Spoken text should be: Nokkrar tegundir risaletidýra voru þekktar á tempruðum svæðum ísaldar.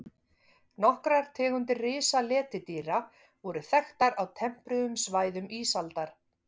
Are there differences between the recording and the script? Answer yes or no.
no